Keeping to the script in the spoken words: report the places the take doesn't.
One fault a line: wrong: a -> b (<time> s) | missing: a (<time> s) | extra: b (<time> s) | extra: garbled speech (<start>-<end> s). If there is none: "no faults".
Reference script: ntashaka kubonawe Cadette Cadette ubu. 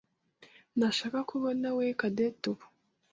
missing: Cadette (2.5 s)